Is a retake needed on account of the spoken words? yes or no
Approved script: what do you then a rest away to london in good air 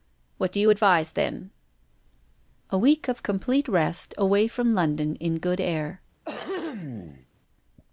yes